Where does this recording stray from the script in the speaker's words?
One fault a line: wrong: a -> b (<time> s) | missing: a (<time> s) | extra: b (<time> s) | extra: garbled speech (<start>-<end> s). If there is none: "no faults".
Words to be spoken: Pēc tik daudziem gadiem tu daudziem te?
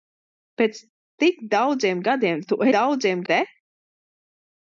no faults